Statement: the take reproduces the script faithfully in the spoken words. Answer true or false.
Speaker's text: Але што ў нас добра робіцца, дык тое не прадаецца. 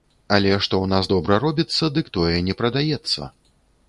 true